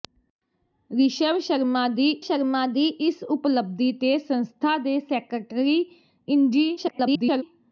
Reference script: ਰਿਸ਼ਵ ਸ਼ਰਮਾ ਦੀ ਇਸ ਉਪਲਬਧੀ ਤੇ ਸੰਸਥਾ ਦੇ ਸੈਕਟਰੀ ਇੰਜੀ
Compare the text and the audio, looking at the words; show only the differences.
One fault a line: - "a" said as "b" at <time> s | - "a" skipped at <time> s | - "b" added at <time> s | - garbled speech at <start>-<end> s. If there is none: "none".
- "ਸ਼ਰਮਾ ਦੀ" added at 2.2 s
- garbled speech at 6.8-7.4 s